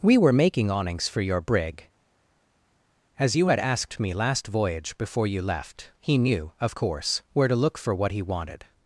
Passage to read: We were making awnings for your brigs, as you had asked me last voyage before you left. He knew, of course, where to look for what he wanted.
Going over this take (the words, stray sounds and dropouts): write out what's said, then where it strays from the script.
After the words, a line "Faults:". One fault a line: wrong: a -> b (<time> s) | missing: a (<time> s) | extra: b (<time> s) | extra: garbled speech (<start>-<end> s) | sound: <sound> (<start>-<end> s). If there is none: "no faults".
We were making awnings for your brig, as you had asked me last voyage before you left. He knew, of course, where to look for what he wanted.
Faults:
wrong: brigs -> brig (1.4 s)